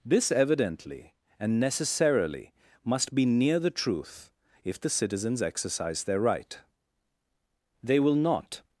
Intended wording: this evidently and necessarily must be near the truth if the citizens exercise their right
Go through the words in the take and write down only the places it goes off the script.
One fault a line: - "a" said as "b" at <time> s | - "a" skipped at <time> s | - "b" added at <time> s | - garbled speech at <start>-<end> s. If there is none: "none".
- "they will not" added at 7.8 s